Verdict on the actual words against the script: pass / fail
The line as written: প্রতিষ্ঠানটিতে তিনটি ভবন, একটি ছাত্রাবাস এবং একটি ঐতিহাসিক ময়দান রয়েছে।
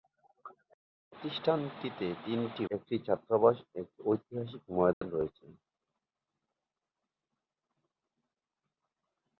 fail